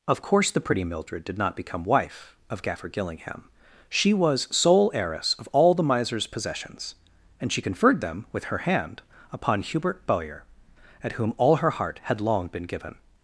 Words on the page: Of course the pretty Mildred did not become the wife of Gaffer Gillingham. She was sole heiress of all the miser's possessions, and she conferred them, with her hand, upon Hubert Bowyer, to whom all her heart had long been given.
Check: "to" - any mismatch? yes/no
yes